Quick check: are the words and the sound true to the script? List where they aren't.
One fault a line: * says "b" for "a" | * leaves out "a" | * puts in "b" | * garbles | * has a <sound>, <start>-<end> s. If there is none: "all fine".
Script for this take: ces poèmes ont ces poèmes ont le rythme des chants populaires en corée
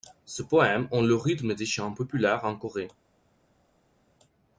* leaves out "ces poèmes ont"